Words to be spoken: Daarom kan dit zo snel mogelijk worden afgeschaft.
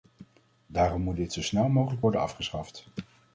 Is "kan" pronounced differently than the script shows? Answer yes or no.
yes